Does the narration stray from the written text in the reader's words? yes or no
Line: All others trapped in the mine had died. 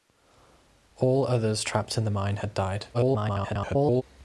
yes